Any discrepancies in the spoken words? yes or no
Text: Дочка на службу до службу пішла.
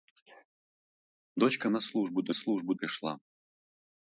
no